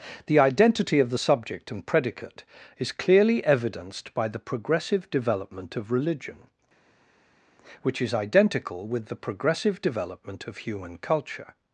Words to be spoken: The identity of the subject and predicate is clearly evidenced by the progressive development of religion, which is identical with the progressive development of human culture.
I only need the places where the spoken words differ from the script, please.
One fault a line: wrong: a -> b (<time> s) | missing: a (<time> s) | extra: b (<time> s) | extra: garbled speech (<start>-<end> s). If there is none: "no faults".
no faults